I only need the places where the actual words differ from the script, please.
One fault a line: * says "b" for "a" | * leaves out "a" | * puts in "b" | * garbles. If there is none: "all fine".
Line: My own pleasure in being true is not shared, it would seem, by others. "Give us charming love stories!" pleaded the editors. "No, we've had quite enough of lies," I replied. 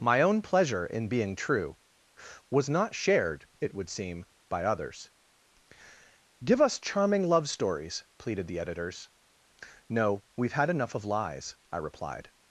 * says "was" for "is"
* leaves out "quite"